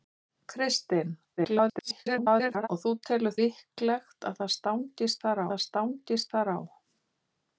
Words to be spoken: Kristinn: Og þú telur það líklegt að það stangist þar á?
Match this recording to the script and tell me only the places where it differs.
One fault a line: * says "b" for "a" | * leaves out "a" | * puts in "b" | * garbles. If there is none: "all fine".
* garbles
* puts in "líklegt að"
* says "stangist þar" for "líklegt að"